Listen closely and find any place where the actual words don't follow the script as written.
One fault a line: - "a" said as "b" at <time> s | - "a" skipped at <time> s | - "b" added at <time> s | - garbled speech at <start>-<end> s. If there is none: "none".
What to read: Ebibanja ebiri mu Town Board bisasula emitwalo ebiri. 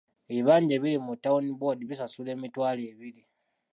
none